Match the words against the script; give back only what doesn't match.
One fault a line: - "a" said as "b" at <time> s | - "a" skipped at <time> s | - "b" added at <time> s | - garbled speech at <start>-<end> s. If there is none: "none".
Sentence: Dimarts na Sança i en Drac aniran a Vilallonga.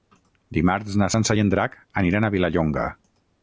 none